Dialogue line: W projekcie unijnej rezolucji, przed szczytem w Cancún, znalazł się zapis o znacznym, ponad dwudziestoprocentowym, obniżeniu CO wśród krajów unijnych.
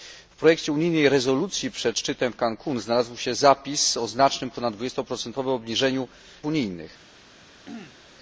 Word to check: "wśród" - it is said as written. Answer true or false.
false